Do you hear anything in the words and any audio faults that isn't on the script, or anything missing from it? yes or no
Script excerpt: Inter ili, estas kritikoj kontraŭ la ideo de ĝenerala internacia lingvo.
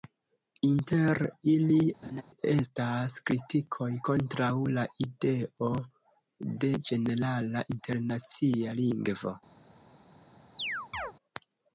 yes